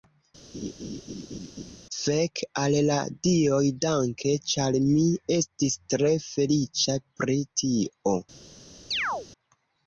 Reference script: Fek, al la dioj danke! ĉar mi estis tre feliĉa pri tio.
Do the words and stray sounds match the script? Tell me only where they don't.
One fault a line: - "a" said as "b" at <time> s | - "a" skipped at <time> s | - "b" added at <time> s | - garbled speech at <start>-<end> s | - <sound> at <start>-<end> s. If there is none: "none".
- laugh at 0.5-1.8 s
- chirp at 8.9-9.3 s